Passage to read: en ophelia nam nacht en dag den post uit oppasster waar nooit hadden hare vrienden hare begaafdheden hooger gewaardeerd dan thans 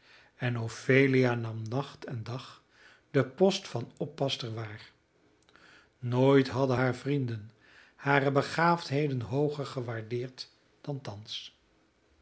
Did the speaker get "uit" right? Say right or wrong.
wrong